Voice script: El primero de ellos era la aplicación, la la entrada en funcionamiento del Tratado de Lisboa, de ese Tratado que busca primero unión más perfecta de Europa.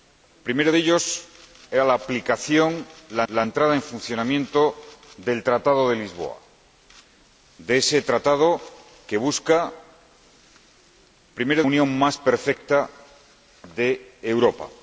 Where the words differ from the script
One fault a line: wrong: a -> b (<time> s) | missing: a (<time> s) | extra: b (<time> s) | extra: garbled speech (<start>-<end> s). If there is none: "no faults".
no faults